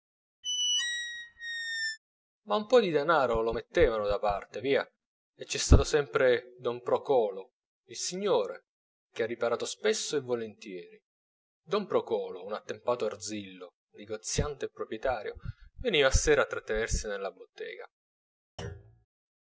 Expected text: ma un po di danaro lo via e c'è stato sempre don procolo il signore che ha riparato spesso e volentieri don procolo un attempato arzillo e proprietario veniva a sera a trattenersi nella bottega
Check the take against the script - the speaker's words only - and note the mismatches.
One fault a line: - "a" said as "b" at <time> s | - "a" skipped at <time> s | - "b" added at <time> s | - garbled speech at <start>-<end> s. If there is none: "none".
- "mettevano da parte" added at 3.5 s
- "negoziante" added at 13.9 s